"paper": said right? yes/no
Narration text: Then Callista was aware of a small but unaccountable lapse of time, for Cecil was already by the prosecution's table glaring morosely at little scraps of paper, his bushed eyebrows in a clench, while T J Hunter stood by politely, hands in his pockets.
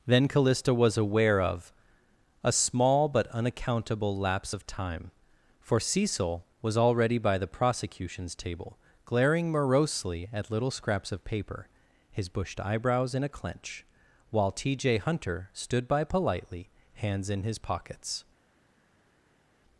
yes